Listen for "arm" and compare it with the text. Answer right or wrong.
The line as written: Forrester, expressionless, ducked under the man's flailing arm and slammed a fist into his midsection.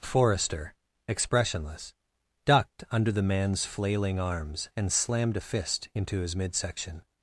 wrong